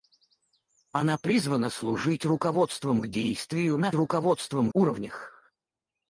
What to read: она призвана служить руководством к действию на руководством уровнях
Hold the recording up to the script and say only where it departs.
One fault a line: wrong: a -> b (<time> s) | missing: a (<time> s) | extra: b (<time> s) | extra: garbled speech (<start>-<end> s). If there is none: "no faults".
no faults